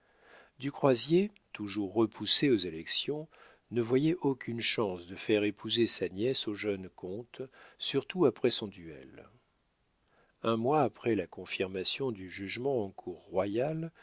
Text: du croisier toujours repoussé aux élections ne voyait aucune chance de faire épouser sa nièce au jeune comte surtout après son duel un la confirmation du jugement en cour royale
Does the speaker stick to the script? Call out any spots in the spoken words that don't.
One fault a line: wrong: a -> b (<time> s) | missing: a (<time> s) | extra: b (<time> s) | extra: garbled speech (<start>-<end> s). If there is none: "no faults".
extra: mois après (10.6 s)